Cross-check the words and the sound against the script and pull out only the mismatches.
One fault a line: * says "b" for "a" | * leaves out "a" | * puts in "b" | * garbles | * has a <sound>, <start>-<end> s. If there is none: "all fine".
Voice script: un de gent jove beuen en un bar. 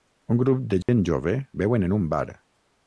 * puts in "grup"
* has a dropout, 0.8-0.9 s